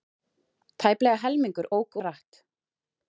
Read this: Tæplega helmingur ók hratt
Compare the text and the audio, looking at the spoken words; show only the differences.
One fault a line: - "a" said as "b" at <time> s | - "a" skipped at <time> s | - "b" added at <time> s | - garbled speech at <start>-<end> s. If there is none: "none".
none